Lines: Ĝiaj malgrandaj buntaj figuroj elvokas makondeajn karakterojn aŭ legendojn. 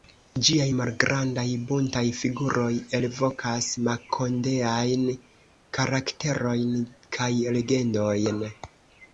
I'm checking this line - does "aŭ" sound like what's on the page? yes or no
no